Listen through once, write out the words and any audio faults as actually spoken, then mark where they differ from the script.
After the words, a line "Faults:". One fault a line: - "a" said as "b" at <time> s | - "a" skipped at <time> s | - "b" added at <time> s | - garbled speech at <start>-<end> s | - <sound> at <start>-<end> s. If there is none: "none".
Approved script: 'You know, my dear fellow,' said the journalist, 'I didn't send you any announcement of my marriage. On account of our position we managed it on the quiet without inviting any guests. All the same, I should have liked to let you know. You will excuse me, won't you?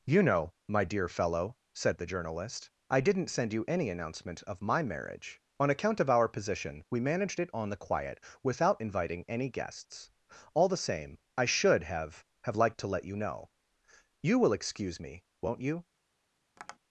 'You know, my dear fellow,' said the journalist, 'I didn't send you any announcement of my marriage. On account of our position we managed it on the quiet without inviting any guests. All the same, I should have have liked to let you know. You will excuse me, won't you?
Faults:
- "have" added at 12.4 s
- tap at 16.6-16.8 s